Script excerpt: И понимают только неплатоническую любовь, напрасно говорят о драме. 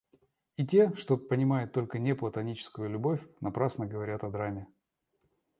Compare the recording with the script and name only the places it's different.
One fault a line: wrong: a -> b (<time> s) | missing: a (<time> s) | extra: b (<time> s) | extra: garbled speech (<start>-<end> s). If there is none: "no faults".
extra: те что (0.7 s)